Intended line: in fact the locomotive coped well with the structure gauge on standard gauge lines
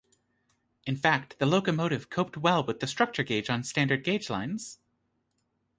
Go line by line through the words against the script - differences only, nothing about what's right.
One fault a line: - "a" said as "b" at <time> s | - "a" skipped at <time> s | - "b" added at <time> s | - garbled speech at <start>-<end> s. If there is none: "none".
none